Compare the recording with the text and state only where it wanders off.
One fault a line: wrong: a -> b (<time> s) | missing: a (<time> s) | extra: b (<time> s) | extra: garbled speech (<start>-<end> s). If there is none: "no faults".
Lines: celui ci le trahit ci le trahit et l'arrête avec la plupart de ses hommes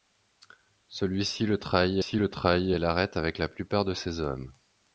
no faults